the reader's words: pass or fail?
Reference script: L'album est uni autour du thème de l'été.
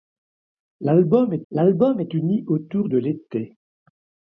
fail